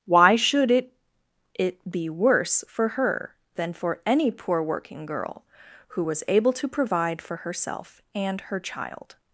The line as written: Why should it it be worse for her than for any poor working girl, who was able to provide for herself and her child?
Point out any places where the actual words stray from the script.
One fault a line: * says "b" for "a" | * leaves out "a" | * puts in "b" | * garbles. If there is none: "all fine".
all fine